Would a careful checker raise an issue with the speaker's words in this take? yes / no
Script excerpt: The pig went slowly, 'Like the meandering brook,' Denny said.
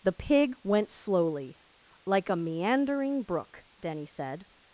yes